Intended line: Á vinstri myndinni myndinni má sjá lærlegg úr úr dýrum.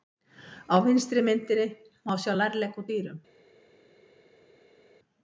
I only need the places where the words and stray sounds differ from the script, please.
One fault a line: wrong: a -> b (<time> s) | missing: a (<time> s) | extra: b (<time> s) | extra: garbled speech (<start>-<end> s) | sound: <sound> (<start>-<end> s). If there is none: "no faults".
missing: myndinni (1.7 s)
missing: úr (2.9 s)